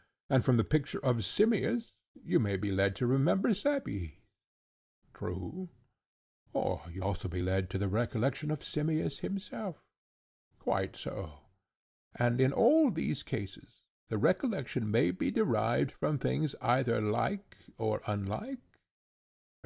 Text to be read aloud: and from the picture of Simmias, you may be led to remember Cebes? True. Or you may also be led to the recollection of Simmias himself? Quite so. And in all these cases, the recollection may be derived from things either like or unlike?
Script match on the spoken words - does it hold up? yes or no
no